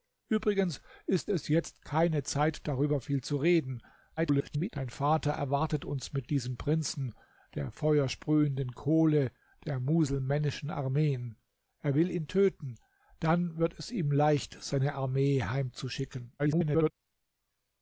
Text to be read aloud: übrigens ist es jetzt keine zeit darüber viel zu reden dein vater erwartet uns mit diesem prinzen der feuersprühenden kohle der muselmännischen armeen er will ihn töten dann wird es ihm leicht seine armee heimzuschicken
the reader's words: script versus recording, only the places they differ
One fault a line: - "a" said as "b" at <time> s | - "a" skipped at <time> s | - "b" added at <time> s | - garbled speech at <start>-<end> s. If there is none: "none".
- garbled speech at 4.2-4.7 s
- garbled speech at 16.4-16.9 s